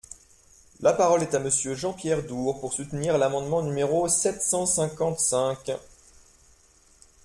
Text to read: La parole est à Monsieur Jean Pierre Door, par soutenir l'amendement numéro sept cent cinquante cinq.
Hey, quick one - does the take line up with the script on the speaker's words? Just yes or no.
no